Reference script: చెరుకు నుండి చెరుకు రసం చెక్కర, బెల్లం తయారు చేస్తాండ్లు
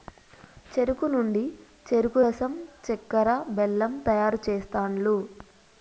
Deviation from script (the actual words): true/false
false